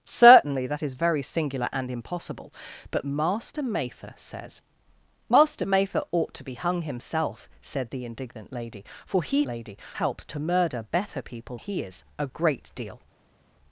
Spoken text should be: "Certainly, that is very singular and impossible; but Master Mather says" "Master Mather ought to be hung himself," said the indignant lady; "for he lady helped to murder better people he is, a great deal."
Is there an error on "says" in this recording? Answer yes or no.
no